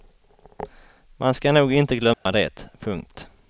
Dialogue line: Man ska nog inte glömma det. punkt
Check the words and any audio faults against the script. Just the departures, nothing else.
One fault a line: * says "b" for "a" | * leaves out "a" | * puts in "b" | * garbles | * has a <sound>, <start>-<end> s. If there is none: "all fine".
* has a dropout, 2.1-2.3 s